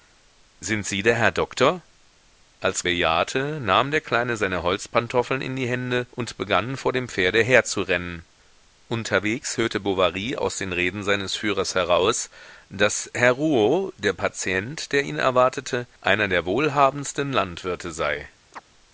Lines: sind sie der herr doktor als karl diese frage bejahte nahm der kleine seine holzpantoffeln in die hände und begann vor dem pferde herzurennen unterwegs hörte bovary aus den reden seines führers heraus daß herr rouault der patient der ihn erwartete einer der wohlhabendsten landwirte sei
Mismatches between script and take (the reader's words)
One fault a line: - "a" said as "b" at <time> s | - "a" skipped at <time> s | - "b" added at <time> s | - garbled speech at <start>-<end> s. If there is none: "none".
- "karl diese frage" skipped at 2.9 s